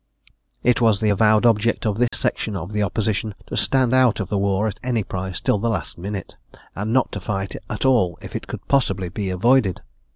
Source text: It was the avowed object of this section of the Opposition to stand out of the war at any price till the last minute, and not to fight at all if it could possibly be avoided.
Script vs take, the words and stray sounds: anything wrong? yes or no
yes